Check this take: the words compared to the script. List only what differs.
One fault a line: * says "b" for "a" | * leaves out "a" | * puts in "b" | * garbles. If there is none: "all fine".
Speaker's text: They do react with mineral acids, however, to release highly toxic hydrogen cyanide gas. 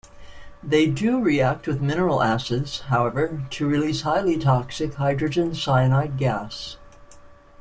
all fine